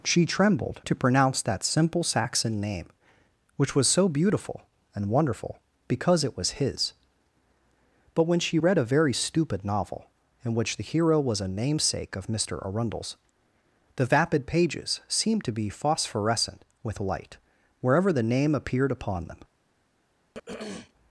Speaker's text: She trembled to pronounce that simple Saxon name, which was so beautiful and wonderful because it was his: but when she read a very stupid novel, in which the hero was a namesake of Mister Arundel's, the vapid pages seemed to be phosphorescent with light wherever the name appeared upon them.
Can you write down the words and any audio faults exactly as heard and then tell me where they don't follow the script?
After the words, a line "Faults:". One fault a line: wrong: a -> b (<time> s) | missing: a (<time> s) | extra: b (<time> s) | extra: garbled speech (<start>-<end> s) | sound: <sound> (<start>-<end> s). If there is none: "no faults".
She trembled to pronounce that simple Saxon name, which was so beautiful and wonderful because it was his: but when she read a very stupid novel, in which the hero was a namesake of Mister Arundel's, the vapid pages seemed to be phosphorescent with light wherever the name appeared upon them.
Faults:
sound: throat clearing (20.3-20.9 s)